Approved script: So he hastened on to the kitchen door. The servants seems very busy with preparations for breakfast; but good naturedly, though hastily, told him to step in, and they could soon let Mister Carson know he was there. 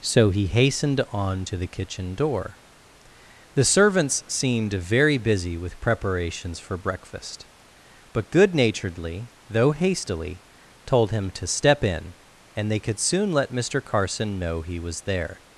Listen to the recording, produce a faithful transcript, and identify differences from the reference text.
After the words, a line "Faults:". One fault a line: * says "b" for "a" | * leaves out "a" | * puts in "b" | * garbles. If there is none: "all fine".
So he hastened on to the kitchen door. The servants seemed very busy with preparations for breakfast; but good naturedly, though hastily, told him to step in, and they could soon let Mister Carson know he was there.
Faults:
* says "seemed" for "seems"